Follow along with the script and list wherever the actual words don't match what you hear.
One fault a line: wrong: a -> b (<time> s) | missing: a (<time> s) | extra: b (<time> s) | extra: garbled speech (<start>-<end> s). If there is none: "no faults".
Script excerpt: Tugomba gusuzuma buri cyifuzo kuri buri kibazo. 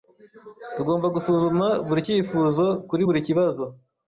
no faults